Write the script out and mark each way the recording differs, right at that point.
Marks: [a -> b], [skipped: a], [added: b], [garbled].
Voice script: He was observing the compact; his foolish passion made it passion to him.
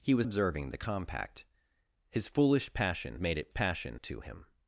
He was observing the compact; his foolish passion made it passion to him.